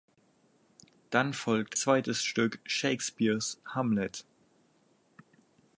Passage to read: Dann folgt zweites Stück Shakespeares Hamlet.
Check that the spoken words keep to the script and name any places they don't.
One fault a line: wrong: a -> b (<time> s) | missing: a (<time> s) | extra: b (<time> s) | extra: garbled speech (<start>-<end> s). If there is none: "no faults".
no faults